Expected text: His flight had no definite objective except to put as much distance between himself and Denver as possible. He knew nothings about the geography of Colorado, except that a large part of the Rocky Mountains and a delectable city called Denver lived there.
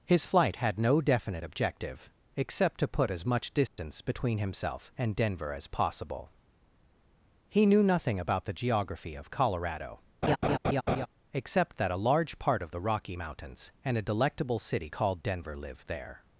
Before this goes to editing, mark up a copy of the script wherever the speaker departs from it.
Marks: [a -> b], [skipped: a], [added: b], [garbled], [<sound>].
His flight had no definite objective except to put as much distance [dropout] between himself and Denver as possible. He knew [nothings -> nothing] about the geography of Colorado, [laugh] except that a large part of the Rocky Mountains and a delectable city called Denver lived there.